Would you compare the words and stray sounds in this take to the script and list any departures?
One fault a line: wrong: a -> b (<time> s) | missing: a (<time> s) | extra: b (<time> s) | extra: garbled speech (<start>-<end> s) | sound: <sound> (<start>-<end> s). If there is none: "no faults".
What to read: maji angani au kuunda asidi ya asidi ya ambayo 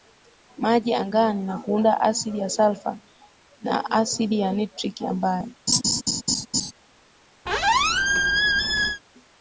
wrong: au -> na (1.4 s)
extra: salfa na (2.5 s)
extra: nitriki (4.5 s)
sound: laugh (5.7-6.7 s)
sound: squeak (7.5-9.0 s)